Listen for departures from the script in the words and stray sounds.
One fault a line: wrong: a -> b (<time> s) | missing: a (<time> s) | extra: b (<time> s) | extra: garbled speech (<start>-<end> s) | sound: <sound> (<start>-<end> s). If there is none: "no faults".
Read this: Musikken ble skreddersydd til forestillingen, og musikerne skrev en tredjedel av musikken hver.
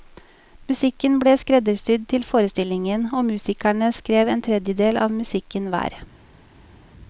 no faults